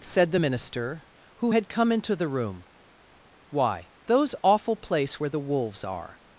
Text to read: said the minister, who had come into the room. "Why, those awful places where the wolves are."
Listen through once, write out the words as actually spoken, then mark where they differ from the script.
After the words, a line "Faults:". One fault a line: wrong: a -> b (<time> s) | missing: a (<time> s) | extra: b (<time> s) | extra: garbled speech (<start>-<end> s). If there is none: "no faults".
said the minister, who had come into the room. "Why, those awful place where the wolves are."
Faults:
wrong: places -> place (4.8 s)